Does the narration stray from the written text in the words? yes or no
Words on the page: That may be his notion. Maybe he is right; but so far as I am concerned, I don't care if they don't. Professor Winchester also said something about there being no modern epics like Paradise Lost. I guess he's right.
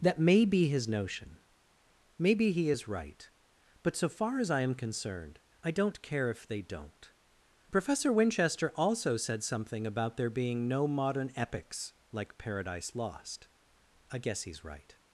no